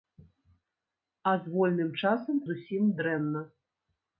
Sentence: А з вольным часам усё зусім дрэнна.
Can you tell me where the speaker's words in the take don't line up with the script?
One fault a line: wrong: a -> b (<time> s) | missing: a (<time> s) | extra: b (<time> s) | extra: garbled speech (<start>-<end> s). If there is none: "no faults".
missing: усё (2.4 s)